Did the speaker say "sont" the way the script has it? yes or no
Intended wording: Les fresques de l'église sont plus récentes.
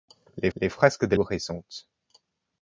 no